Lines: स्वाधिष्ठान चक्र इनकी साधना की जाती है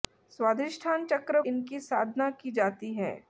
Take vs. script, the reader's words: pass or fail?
pass